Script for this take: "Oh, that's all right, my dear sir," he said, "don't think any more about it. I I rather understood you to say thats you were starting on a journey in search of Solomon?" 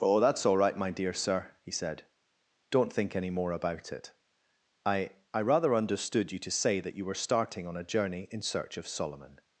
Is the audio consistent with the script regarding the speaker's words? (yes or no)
no